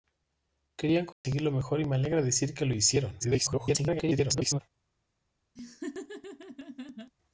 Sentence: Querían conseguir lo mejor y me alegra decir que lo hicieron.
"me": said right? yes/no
yes